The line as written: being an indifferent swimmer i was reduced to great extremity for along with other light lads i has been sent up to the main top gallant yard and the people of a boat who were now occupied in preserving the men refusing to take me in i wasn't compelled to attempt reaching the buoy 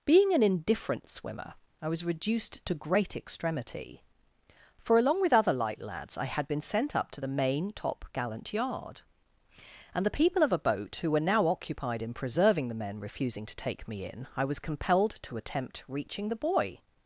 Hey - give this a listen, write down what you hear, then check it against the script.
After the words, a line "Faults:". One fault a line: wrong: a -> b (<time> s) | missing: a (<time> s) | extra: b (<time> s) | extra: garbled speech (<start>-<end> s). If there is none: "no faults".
being an indifferent swimmer i was reduced to great extremity for along with other light lads i had been sent up to the main top gallant yard and the people of a boat who were now occupied in preserving the men refusing to take me in i was compelled to attempt reaching the buoy
Faults:
wrong: has -> had (6.2 s)
wrong: wasn't -> was (14.4 s)